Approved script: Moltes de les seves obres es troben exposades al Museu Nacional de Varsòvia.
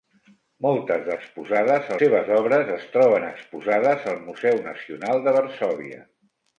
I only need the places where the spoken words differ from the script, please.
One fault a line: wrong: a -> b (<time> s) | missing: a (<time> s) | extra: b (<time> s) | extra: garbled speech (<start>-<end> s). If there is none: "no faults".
wrong: les -> exposades (1.1 s)